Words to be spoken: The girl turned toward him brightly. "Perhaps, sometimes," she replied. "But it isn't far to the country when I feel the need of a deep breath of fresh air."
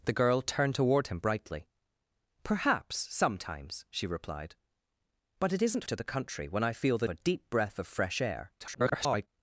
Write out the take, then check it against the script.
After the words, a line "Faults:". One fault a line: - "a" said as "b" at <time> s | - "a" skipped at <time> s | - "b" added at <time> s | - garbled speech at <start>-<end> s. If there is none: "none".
The girl turned toward him brightly. "Perhaps, sometimes," she replied. "But it isn't to the country when I feel the a deep breath of fresh air." [garbled]
Faults:
- "far" skipped at 5.8 s
- "need of" skipped at 7.1 s
- garbled speech at 8.6-9.3 s